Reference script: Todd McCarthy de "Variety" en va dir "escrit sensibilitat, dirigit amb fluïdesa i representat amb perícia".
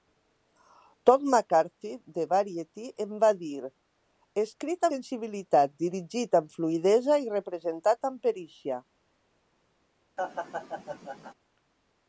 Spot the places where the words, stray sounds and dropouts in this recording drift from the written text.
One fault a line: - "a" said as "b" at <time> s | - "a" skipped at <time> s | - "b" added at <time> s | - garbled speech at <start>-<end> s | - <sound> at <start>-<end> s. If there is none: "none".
- laugh at 10.2-11.3 s